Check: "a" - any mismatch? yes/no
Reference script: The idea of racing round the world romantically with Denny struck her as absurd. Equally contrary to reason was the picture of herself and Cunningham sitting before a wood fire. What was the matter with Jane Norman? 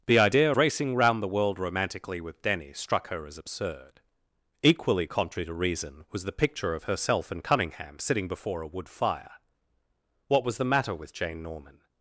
no